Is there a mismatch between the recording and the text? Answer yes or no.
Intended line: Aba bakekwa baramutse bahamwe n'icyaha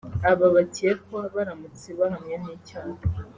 no